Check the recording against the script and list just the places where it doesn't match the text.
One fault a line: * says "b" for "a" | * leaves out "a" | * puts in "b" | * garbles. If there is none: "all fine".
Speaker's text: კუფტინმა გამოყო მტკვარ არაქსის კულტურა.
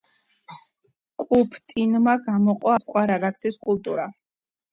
all fine